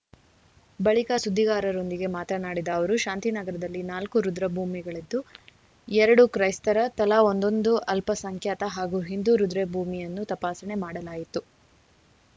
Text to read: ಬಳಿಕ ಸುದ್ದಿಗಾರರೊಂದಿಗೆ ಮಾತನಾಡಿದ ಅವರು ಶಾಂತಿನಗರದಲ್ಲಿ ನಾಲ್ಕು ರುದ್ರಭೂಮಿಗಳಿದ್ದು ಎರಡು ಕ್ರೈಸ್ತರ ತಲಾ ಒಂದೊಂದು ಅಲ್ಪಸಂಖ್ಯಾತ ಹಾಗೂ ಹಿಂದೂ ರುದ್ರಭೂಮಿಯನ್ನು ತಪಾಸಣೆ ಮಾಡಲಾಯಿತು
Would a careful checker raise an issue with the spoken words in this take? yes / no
no